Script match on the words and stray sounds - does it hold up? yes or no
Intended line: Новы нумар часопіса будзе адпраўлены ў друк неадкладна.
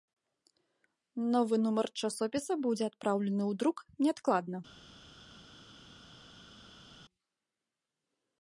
yes